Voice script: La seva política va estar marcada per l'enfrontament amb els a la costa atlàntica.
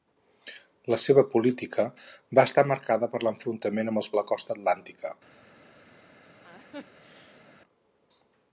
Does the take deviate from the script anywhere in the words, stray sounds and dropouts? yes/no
yes